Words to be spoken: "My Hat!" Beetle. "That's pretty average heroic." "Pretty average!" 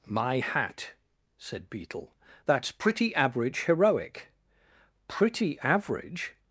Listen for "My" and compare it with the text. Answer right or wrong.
right